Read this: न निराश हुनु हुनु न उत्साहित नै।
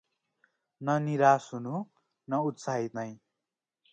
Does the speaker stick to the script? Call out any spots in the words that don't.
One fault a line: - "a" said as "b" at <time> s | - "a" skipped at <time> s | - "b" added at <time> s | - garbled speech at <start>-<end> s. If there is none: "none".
- "हुनु" skipped at 1.8 s